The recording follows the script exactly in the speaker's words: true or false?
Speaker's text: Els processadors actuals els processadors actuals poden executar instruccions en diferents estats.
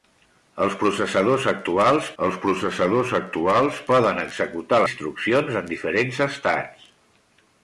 true